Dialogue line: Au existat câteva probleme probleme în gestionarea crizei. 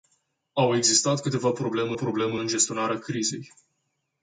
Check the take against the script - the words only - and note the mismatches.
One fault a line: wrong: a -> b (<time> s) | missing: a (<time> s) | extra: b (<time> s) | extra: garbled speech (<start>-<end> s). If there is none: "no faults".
no faults